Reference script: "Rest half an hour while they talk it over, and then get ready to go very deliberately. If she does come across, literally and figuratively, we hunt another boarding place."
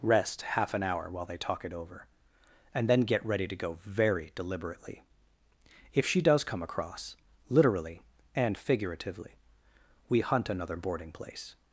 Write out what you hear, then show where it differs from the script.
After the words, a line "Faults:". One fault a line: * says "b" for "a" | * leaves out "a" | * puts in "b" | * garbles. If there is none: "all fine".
"Rest half an hour while they talk it over, and then get ready to go very deliberately. If she does come across, literally and figuratively, we hunt another boarding place."
Faults:
all fine